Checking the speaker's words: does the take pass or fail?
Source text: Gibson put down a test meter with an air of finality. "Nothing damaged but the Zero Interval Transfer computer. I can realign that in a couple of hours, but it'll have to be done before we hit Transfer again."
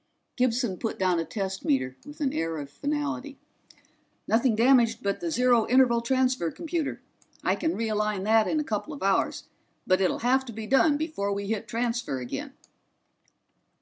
pass